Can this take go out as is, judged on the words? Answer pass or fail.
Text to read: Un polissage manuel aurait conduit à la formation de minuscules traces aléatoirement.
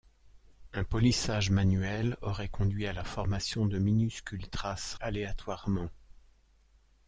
pass